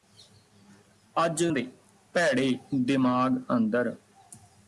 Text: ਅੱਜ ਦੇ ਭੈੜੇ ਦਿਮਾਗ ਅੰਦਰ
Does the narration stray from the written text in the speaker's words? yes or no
no